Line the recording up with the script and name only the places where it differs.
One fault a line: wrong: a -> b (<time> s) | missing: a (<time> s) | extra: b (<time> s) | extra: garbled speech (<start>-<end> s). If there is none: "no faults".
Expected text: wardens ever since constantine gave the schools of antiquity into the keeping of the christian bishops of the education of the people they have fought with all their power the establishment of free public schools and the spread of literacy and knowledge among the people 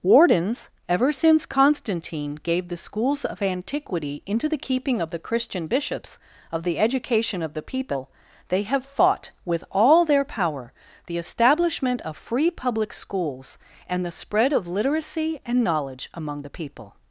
no faults